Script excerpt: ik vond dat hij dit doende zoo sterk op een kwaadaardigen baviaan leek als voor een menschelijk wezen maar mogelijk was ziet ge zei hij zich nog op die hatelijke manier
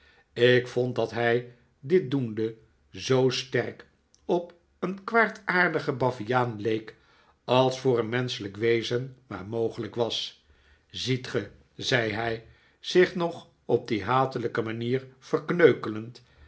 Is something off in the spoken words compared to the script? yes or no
no